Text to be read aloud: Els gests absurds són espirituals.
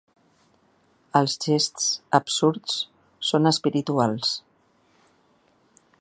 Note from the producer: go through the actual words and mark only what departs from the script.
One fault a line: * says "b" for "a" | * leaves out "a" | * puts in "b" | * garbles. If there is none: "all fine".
all fine